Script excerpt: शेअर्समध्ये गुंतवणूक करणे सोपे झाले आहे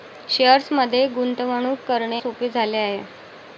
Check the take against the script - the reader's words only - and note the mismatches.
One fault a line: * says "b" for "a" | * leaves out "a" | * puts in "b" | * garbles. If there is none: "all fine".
all fine